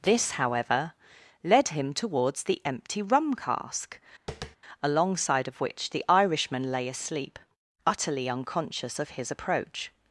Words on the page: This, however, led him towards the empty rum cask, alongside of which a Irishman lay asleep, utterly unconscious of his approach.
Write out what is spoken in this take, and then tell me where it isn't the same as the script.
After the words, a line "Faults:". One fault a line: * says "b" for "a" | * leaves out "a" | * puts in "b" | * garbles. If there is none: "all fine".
This, however, led him towards the empty rum cask, alongside of which the Irishman lay asleep, utterly unconscious of his approach.
Faults:
* says "the" for "a"